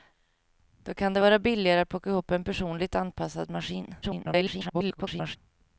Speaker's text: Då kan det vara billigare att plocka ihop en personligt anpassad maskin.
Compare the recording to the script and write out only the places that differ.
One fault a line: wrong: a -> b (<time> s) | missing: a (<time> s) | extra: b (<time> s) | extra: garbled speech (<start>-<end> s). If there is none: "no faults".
extra: garbled speech (4.0-5.4 s)